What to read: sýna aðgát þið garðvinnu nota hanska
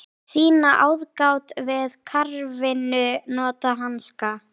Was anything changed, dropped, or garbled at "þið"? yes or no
yes